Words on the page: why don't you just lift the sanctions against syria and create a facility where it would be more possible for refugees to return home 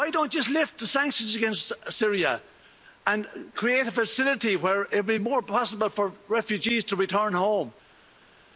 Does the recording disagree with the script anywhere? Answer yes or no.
no